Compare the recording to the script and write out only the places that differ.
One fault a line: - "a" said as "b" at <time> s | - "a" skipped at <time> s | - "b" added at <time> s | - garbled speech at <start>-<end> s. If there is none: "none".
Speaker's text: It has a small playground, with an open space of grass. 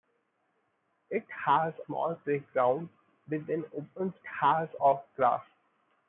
- "a" skipped at 1.8 s
- "space" said as "has" at 4.2 s